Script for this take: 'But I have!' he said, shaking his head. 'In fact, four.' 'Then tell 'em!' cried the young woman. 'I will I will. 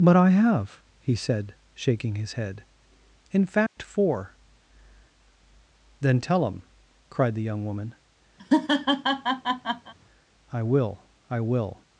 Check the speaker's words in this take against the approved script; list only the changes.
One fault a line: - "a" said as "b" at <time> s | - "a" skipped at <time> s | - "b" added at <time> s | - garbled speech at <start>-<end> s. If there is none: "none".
none